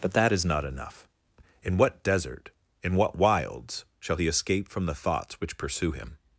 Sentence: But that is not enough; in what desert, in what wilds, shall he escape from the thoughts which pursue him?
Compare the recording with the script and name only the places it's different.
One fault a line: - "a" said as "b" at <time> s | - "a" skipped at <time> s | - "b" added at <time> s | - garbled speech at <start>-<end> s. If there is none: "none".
none